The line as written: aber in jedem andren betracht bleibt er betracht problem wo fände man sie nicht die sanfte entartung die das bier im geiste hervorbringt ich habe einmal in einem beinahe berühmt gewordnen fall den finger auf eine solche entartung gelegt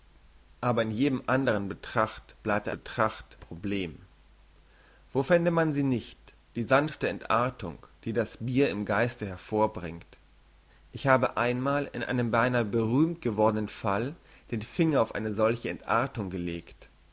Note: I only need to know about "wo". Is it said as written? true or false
true